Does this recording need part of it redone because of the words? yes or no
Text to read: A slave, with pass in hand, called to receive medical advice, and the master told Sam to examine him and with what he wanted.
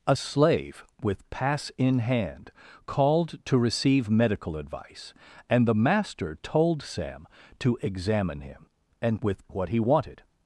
no